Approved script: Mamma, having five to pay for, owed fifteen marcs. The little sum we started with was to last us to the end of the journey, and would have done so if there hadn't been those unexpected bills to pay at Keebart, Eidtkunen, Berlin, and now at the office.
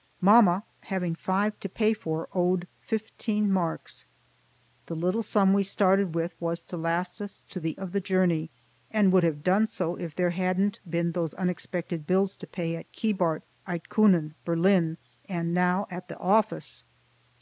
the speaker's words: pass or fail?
fail